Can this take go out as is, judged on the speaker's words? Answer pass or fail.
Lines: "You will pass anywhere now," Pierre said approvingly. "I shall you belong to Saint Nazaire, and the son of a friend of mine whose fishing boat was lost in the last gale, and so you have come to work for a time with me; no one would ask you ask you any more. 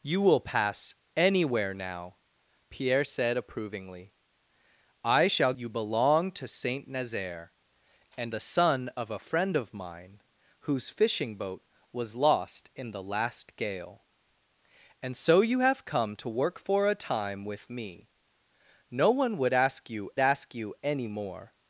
pass